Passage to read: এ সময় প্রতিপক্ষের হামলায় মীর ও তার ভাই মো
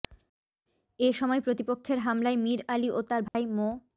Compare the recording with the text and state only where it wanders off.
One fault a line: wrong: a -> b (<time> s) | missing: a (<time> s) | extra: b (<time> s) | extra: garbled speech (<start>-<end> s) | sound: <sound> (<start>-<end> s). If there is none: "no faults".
extra: আলী (2.7 s)
sound: dropout (3.3-3.3 s)